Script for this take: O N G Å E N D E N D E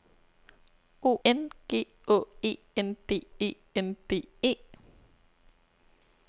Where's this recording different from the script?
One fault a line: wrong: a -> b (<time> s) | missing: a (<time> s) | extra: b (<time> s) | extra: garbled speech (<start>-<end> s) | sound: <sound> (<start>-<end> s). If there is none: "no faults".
no faults